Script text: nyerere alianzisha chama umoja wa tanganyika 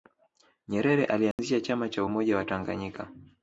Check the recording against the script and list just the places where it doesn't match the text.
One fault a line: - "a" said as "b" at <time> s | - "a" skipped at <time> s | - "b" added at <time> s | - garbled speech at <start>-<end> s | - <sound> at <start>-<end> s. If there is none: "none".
- dropout at 1.3-1.4 s
- "cha" added at 1.9 s